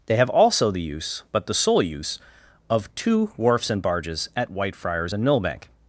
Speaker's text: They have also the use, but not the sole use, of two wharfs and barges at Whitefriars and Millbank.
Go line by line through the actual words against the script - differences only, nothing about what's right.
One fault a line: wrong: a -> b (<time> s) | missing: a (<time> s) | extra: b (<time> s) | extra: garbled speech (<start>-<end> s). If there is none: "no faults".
missing: not (1.4 s)